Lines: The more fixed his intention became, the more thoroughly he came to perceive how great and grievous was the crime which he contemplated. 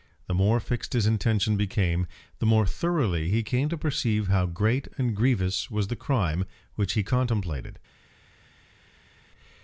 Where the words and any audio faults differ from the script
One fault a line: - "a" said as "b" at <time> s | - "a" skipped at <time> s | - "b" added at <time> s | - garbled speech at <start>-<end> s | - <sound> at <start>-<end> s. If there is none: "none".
none